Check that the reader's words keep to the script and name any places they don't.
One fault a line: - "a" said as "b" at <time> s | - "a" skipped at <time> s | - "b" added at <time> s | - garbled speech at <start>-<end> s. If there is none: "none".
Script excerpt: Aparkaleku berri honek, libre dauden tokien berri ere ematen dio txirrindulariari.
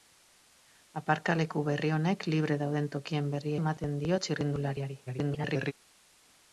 - "ere" skipped at 3.5 s
- garbled speech at 5.1-5.7 s